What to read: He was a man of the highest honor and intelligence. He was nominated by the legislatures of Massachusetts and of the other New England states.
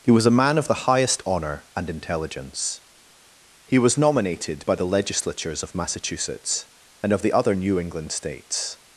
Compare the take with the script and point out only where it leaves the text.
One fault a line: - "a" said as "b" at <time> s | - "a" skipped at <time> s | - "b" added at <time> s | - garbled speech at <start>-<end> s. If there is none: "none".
none